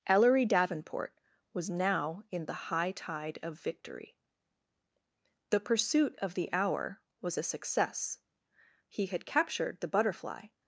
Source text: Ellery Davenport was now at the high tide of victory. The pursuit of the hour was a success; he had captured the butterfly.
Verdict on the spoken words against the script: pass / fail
fail